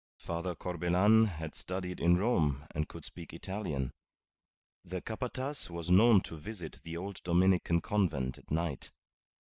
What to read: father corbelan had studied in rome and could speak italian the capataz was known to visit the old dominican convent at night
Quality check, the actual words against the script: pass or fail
pass